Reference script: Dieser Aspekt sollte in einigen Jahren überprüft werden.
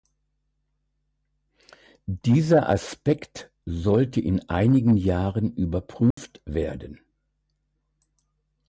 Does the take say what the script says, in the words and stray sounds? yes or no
no